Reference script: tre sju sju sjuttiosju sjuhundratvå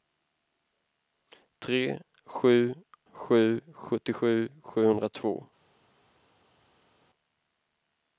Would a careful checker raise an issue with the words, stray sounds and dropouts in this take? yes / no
no